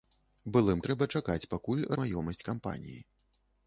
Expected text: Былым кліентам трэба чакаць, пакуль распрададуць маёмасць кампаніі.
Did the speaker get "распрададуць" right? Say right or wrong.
wrong